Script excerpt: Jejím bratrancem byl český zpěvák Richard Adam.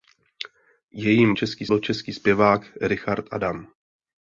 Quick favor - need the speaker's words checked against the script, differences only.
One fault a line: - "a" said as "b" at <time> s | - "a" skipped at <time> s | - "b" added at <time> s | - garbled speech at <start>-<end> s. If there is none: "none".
- "bratrancem" said as "český" at 1.3 s